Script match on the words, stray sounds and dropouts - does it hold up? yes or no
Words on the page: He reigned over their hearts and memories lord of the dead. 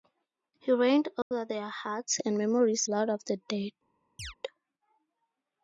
no